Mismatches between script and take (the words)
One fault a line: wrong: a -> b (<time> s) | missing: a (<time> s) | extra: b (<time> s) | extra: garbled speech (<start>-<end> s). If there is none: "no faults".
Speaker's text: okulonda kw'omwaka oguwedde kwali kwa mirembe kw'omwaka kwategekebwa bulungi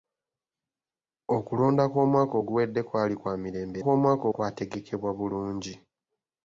no faults